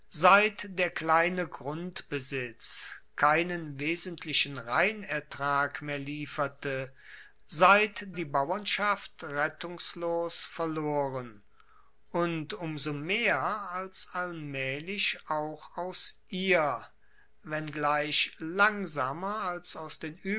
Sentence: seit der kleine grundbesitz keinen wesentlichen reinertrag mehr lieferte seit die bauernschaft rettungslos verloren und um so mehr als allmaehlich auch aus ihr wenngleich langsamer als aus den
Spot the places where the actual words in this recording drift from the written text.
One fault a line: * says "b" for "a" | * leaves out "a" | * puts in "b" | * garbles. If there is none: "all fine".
all fine